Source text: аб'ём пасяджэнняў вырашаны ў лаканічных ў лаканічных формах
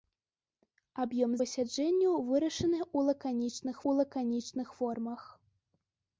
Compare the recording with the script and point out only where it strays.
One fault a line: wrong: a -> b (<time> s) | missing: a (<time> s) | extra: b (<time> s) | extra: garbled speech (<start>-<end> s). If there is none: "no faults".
no faults